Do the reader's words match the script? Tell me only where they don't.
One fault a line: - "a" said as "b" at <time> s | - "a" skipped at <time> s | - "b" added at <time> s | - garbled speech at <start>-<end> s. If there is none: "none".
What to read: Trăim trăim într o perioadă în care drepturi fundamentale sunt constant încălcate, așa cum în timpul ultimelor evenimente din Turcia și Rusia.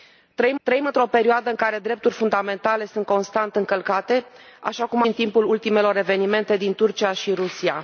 none